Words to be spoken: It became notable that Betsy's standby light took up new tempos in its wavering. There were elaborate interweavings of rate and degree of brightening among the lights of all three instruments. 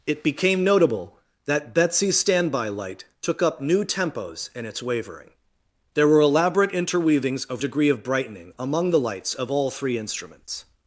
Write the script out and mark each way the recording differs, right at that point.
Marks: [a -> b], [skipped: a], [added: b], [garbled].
It became notable that Betsy's standby light took up new tempos in its wavering. There were elaborate interweavings of [skipped: rate and] degree of brightening among the lights of all three instruments.